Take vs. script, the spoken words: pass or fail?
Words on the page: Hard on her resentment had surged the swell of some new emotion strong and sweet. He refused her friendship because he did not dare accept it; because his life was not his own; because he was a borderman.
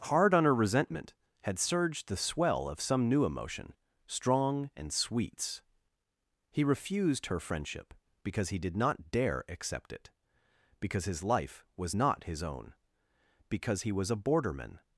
fail